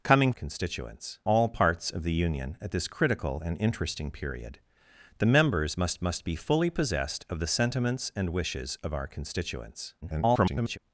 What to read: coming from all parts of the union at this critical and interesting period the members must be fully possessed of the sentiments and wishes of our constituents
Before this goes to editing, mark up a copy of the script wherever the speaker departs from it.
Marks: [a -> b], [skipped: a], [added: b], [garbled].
coming [from -> constituents] all parts of the union at this critical and interesting period the members must [added: must] be fully possessed of the sentiments and wishes of our constituents [garbled]